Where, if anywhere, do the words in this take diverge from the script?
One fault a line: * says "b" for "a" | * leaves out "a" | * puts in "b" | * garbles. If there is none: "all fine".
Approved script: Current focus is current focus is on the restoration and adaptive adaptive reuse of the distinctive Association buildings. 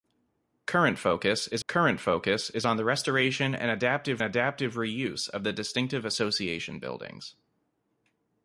all fine